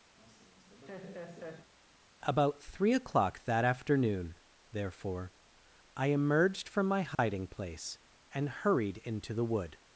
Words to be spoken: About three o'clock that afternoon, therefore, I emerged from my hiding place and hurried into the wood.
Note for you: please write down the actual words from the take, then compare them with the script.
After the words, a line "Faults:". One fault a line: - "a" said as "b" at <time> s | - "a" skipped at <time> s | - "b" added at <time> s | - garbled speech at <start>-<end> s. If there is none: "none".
About three o'clock that afternoon, therefore, I emerged from my hiding place and hurried into the wood.
Faults:
none